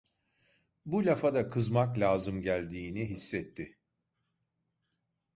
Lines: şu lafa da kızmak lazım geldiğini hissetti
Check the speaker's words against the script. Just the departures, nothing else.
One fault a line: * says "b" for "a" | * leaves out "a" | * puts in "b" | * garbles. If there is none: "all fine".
* says "bu" for "şu"